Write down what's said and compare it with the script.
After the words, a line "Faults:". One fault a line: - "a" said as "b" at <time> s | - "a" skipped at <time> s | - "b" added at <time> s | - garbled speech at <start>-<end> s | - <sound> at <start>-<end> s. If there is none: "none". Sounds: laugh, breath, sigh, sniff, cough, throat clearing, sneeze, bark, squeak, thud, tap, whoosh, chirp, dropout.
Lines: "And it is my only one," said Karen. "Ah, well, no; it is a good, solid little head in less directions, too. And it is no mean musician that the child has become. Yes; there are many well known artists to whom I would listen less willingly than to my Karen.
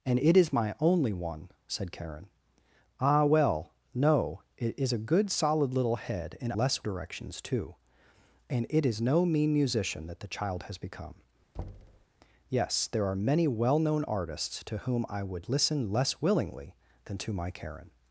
"And it is my only one," said Karen. "Ah, well, no; it is a good, solid little head in less directions, too. And it is no mean musician that the child has become. Yes; there are many well known artists to whom I would listen less willingly than to my Karen.
Faults:
- thud at 11.5-12.1 s